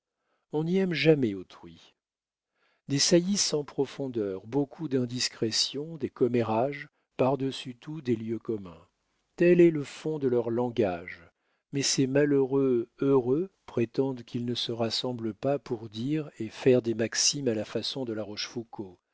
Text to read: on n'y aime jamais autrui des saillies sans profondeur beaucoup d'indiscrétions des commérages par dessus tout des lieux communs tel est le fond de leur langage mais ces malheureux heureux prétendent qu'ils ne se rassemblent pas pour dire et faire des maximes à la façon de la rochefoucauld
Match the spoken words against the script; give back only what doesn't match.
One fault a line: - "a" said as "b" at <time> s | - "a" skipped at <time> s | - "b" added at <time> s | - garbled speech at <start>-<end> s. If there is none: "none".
none